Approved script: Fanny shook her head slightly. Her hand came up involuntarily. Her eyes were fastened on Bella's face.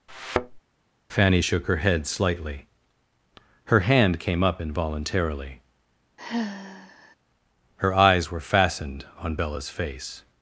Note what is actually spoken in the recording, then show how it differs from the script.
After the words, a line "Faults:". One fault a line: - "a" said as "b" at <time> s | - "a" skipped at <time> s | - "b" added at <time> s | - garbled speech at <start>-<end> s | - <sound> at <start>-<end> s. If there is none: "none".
Fanny shook her head slightly. Her hand came up involuntarily. Her eyes were fastened on Bella's face.
Faults:
- thud at 0.1-0.6 s
- sigh at 6.2-7.2 s